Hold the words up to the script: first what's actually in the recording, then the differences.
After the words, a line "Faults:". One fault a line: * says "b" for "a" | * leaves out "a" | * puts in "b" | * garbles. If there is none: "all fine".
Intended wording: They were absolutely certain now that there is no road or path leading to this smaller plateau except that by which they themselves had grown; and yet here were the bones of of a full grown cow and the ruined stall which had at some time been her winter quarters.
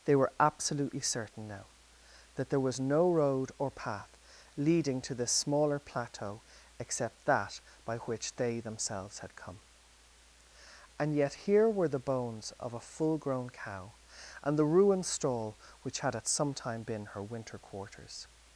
They were absolutely certain now that there was no road or path leading to this smaller plateau except that by which they themselves had come; and yet here were the bones of a full grown cow and the ruined stall which had at some time been her winter quarters.
Faults:
* says "was" for "is"
* says "come" for "grown"
* leaves out "of"